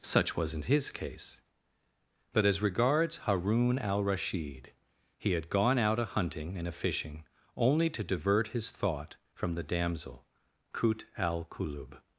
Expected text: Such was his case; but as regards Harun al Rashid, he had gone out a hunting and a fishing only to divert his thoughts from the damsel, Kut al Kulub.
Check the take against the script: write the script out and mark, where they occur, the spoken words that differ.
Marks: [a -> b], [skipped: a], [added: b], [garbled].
Such [was -> wasn't] his case; but as regards Harun al Rashid, he had gone out a hunting and a fishing only to divert his [thoughts -> thought] from the damsel, Kut al Kulub.